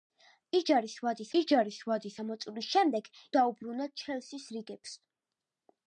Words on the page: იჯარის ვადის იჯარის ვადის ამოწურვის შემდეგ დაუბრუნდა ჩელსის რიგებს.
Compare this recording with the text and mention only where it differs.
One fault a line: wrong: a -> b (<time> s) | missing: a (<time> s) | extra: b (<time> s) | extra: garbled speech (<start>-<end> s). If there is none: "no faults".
no faults